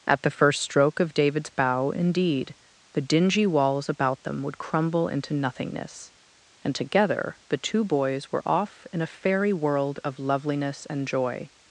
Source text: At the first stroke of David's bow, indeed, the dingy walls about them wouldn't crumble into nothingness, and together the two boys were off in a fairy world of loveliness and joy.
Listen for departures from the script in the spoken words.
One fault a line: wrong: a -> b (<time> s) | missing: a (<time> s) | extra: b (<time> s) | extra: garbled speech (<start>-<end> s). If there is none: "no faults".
wrong: wouldn't -> would (4.4 s)